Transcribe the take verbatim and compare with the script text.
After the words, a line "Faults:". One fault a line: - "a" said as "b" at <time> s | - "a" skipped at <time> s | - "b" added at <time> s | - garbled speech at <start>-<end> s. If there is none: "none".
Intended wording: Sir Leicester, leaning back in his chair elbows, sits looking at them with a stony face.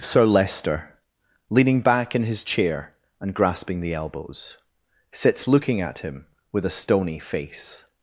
Sir Leicester, leaning back in his chair and grasping the elbows, sits looking at him with a stony face.
Faults:
- "and grasping the" added at 3.2 s
- "them" said as "him" at 6.0 s